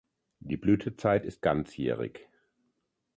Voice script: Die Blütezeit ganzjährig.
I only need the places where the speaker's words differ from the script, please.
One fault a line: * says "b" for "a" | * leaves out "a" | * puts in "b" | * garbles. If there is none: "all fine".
* puts in "ist"